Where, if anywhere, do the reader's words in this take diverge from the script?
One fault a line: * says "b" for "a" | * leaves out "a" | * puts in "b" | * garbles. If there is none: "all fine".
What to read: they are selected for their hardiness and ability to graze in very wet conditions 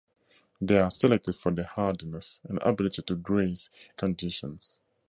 * leaves out "in very wet"